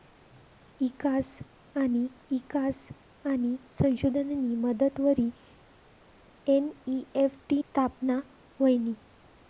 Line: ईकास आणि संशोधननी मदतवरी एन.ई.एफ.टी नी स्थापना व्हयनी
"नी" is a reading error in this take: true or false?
true